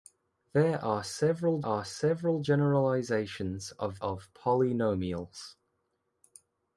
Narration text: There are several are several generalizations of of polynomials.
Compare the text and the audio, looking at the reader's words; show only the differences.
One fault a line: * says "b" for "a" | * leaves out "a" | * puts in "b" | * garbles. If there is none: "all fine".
all fine